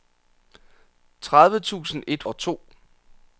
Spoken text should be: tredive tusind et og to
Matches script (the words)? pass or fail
pass